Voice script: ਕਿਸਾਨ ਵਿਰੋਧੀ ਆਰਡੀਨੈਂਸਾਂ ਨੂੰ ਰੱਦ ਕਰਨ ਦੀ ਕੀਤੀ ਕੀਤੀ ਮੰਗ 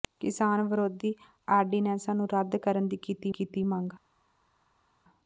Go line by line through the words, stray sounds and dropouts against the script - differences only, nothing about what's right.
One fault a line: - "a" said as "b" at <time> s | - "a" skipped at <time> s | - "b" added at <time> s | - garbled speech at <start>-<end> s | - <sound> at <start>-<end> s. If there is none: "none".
none